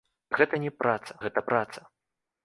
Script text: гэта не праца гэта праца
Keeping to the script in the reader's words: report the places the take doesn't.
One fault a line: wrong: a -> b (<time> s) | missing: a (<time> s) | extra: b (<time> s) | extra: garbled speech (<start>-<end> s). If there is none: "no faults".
no faults